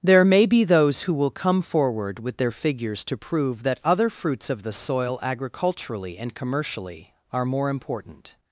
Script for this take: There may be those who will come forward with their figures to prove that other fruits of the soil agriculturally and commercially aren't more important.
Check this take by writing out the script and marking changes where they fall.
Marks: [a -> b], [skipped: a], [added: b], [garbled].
There may be those who will come forward with their figures to prove that other fruits of the soil agriculturally and commercially [aren't -> are] more important.